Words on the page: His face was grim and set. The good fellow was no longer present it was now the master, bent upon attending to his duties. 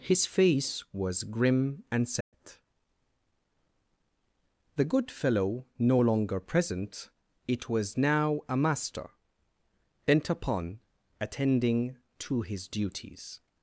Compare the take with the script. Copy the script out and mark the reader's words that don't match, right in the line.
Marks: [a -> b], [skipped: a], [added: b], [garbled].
His face was grim and set. The good fellow [skipped: was] no longer present it was now [the -> a] master, bent upon attending to his duties.